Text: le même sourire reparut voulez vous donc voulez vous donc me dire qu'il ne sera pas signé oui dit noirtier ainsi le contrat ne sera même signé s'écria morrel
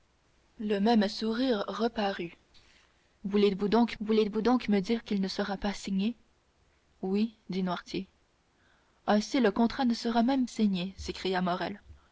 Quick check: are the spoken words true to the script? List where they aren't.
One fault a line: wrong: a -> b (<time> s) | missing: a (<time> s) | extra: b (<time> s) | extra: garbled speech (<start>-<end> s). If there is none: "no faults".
no faults